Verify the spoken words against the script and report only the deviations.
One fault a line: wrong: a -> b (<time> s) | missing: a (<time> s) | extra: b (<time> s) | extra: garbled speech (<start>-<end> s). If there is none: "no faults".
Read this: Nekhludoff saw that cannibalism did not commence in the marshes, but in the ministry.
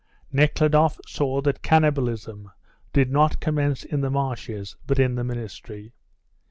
no faults